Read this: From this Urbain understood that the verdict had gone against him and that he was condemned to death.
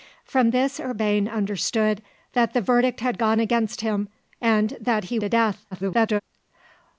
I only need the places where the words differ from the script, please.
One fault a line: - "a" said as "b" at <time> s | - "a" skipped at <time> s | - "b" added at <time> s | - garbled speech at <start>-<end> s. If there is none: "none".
- "was condemned" skipped at 5.2 s
- garbled speech at 5.7-6.2 s